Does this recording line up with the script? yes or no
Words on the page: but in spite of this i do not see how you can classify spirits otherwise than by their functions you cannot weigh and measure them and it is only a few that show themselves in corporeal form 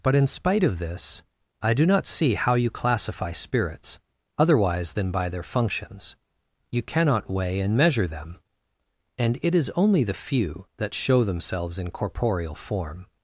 no